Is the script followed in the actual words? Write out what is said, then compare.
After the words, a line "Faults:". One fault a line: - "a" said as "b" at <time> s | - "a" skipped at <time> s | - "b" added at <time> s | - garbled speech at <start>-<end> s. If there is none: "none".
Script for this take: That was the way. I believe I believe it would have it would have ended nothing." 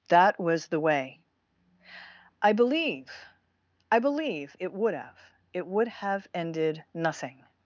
That was the way. I believe I believe it would have it would have ended nothing."
Faults:
none